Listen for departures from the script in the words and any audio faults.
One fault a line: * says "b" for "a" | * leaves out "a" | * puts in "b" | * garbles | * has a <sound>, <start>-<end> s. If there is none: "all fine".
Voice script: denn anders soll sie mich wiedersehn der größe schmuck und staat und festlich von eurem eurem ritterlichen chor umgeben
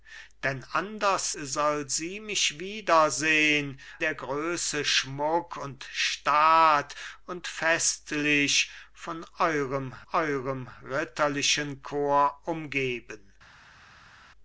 all fine